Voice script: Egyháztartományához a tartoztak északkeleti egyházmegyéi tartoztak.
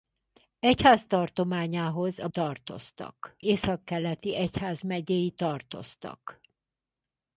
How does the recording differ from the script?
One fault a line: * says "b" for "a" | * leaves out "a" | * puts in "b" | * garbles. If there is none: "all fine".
all fine